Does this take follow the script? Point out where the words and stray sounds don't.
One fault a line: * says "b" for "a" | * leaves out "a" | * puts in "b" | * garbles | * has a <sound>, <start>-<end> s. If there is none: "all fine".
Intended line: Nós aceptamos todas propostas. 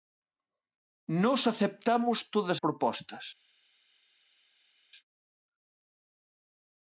all fine